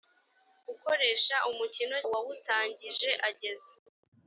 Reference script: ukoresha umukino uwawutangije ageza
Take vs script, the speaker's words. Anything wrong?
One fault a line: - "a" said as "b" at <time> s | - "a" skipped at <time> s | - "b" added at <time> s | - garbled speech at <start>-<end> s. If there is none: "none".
none